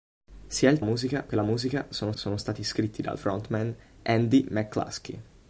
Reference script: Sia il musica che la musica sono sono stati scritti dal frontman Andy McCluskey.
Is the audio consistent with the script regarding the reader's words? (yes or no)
yes